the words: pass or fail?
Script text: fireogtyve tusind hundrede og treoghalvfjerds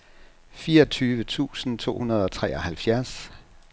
fail